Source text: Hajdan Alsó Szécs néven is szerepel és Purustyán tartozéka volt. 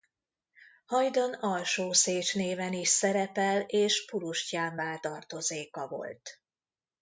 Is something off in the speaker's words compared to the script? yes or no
yes